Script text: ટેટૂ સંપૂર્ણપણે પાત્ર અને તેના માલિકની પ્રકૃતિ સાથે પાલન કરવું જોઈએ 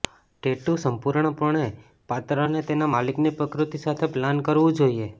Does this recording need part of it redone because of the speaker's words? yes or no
no